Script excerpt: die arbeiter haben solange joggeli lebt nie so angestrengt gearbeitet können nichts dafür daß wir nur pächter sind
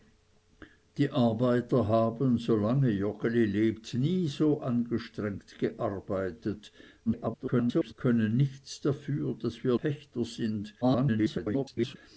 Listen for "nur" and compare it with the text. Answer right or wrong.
wrong